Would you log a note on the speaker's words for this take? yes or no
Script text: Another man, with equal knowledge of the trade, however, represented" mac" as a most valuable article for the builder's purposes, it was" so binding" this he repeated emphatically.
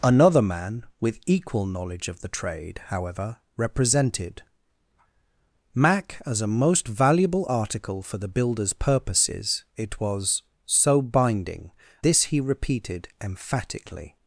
no